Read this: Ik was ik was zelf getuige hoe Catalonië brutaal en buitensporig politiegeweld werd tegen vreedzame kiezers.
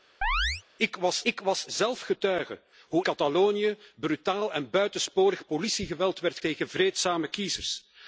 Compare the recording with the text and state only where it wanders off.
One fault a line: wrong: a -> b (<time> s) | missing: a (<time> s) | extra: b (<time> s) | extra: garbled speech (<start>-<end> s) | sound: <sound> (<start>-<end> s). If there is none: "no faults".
sound: chirp (0.2-0.6 s)